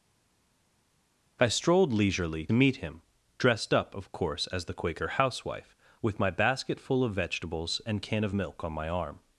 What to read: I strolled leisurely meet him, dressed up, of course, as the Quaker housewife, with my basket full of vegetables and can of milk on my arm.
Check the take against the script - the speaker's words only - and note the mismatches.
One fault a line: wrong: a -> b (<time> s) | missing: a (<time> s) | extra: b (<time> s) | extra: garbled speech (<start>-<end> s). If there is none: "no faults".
no faults